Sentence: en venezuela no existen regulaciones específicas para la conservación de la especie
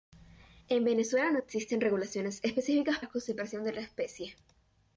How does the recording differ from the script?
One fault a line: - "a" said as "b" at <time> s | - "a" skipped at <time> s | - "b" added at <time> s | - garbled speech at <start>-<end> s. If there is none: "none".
- "para" skipped at 3.0 s